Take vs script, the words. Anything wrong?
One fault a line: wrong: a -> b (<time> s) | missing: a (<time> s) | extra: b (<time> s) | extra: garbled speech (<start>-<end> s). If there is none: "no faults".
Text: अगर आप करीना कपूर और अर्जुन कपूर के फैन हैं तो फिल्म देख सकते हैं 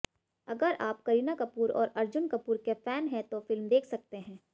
no faults